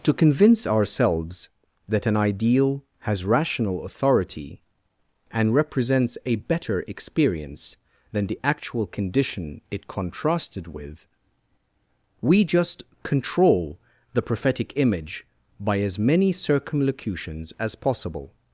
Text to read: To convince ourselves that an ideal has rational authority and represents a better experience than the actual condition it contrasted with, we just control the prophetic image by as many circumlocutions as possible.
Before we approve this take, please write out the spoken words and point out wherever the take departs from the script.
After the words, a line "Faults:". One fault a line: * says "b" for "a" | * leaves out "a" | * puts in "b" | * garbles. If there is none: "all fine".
To convince ourselves that an ideal has rational authority and represents a better experience than the actual condition it contrasted with, we just control the prophetic image by as many circumlocutions as possible.
Faults:
all fine